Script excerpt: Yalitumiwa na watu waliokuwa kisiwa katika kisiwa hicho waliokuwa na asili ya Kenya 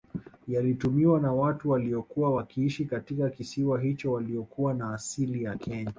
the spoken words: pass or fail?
fail